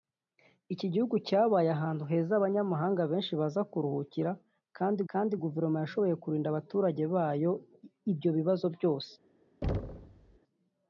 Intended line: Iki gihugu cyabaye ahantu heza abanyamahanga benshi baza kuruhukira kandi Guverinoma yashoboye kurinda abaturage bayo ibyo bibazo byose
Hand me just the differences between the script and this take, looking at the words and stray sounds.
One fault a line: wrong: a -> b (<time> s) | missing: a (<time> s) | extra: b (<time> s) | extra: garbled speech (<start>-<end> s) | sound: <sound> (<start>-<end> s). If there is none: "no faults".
extra: kandi (5.1 s)
sound: thud (9.6-10.4 s)